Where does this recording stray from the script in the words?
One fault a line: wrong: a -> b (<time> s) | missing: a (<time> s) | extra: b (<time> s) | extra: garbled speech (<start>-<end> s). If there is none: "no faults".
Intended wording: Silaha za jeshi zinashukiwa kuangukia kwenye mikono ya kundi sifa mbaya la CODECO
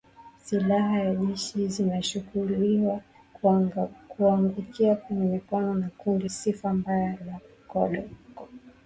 no faults